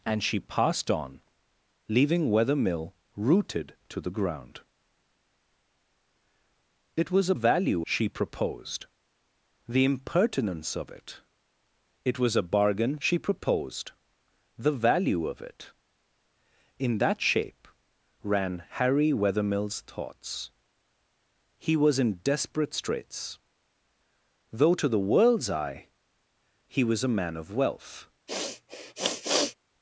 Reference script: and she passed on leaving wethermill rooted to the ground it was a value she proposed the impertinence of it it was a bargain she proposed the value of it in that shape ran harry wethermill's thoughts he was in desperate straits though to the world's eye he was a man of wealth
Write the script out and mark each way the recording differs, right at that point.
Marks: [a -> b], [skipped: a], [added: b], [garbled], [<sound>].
and she passed on leaving wethermill rooted to the ground it was a value she proposed the impertinence of it it was a bargain she proposed the value of it in that shape ran harry wethermill's thoughts he was in desperate straits though to the world's eye he was a man of wealth [sniff]